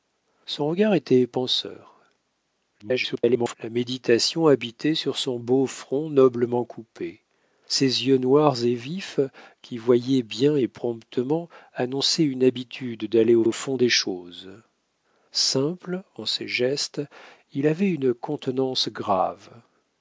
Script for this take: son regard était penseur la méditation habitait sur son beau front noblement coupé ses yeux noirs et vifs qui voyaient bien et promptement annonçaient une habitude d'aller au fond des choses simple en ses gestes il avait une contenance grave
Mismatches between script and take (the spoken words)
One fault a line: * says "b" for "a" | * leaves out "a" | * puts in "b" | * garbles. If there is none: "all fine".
* garbles
* puts in "au"